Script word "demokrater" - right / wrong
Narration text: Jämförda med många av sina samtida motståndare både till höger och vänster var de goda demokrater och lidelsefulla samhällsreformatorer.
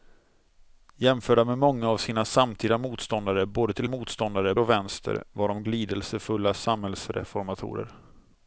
wrong